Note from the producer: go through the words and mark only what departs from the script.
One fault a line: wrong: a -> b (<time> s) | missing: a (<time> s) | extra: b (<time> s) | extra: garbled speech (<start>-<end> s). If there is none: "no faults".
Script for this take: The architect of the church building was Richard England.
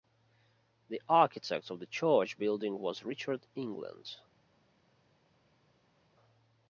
no faults